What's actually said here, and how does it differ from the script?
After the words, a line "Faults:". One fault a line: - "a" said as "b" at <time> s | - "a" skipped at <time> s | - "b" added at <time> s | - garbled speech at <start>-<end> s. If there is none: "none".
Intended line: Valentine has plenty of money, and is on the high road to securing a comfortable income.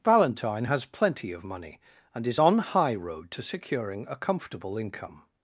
Valentine has plenty of money, and is on high road to securing a comfortable income.
Faults:
- "the" skipped at 2.6 s